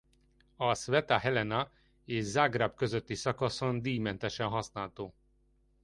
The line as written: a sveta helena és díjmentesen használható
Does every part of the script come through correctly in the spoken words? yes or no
no